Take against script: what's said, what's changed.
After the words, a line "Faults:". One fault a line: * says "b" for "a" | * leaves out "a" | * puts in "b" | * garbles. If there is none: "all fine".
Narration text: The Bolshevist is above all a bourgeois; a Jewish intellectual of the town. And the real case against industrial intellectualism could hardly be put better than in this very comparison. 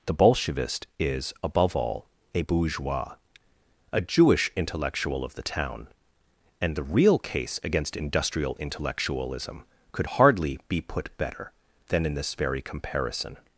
The Bolshevist is above all a bourgeois; a Jewish intellectual of the town. And the real case against industrial intellectualism could hardly be put better than in this very comparison.
Faults:
all fine